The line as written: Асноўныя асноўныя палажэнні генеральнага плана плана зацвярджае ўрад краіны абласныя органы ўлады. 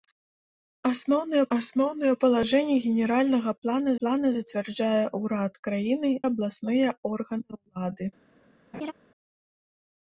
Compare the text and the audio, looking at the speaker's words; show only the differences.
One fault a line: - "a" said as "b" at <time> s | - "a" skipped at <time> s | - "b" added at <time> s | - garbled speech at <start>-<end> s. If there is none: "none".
none